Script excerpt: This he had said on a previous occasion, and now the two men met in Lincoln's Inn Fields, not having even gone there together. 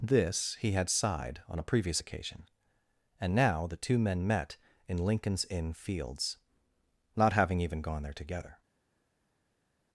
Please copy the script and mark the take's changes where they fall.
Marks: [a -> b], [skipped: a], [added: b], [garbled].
This he had [said -> sighed] on a previous occasion, and now the two men met in Lincoln's Inn Fields, not having even gone there together.